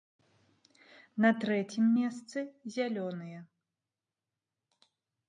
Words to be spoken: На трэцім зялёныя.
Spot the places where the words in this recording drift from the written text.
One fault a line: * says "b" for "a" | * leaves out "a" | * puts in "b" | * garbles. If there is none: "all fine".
* puts in "месцы"